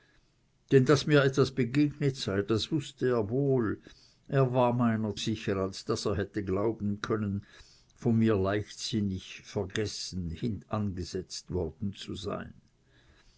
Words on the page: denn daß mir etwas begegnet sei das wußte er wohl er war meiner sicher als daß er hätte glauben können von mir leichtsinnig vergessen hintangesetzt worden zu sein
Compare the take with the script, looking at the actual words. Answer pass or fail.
pass